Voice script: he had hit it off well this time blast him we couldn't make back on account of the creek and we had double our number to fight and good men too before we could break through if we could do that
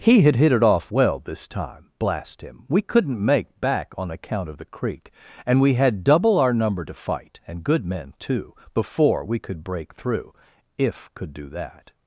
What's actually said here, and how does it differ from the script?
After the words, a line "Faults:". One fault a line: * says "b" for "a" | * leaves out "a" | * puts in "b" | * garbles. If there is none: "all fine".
he had hit it off well this time blast him we couldn't make back on account of the creek and we had double our number to fight and good men too before we could break through if could do that
Faults:
* leaves out "we"